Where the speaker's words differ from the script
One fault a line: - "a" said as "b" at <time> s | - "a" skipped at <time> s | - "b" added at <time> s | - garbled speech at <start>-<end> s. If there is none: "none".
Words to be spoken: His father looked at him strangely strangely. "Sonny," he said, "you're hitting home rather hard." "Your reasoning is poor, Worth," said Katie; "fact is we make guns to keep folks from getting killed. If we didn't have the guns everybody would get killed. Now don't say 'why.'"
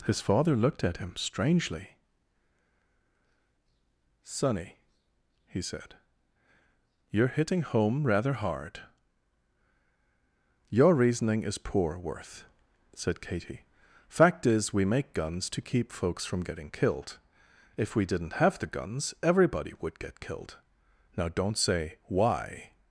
- "strangely" skipped at 1.9 s